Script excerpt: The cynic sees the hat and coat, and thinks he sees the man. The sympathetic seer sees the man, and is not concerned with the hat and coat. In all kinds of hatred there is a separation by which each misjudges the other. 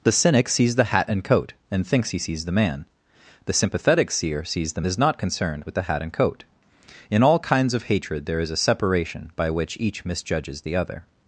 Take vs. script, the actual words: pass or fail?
fail